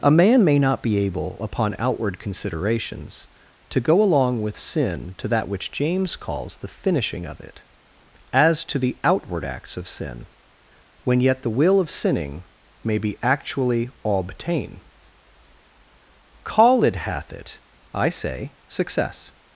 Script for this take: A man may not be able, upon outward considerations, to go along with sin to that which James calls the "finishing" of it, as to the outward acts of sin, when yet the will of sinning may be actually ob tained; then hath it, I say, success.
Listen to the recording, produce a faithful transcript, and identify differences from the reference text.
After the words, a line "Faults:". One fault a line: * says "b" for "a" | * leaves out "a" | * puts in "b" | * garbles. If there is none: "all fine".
A man may not be able, upon outward considerations, to go along with sin to that which James calls the "finishing" of it, as to the outward acts of sin, when yet the will of sinning may be actually obtain call it hath it, I say, success.
Faults:
* says "obtain call it" for "ob tained then"